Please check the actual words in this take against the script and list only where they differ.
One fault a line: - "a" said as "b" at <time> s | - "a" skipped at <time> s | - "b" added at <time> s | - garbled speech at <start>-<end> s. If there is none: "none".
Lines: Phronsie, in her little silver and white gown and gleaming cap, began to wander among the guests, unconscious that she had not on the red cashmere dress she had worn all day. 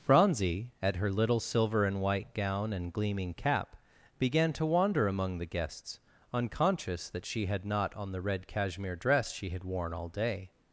- "in" said as "at" at 0.8 s